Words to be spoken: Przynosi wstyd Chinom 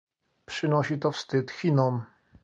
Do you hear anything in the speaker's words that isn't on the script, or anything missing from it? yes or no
yes